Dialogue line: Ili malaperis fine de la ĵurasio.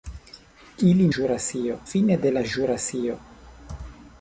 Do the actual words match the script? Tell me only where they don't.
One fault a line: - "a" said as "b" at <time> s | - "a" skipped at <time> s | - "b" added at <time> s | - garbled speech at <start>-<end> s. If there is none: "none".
- "malaperis" said as "ĵurasio" at 1.2 s